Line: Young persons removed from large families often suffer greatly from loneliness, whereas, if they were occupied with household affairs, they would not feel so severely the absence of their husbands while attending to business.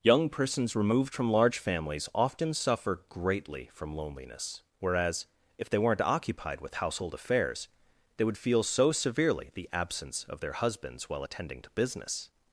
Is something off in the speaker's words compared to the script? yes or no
yes